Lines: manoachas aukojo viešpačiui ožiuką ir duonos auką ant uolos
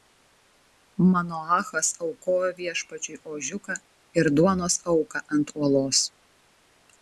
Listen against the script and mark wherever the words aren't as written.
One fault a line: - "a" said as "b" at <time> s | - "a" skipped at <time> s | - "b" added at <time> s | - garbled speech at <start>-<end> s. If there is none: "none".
none